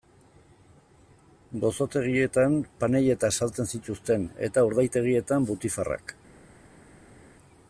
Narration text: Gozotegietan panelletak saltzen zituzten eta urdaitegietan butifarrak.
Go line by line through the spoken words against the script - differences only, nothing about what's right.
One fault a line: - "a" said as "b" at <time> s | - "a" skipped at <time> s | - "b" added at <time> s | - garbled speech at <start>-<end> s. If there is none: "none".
none